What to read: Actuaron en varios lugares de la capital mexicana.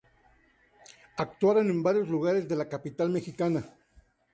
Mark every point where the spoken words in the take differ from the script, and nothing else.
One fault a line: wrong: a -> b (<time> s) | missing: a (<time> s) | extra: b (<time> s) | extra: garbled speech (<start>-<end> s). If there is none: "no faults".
no faults